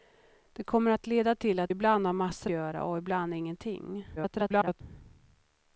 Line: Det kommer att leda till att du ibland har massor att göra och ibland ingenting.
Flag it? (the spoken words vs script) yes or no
yes